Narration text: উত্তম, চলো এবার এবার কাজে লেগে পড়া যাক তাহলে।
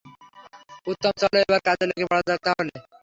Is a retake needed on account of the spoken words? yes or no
yes